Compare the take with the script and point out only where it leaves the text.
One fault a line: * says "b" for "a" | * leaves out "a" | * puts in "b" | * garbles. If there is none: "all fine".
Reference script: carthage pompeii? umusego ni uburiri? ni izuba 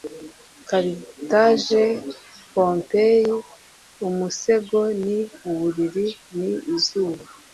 all fine